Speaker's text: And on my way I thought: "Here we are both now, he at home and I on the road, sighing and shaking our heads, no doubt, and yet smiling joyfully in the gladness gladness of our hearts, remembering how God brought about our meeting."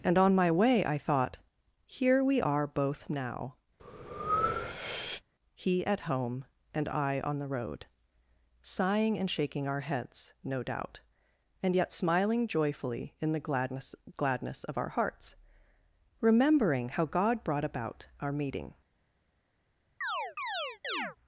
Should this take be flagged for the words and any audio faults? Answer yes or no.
yes